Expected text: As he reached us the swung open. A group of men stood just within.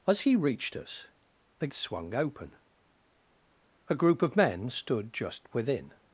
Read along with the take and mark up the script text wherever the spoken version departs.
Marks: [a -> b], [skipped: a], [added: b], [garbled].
As he reached us the swung open. A group of men stood just within.